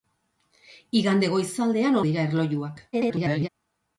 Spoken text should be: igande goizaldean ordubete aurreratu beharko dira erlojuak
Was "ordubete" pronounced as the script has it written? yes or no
no